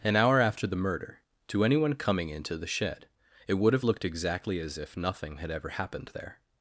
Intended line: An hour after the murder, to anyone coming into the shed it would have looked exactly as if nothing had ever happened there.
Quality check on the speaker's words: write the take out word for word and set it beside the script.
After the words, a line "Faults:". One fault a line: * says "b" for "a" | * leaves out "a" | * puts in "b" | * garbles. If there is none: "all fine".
An hour after the murder, to anyone coming into the shed it would have looked exactly as if nothing had ever happened there.
Faults:
all fine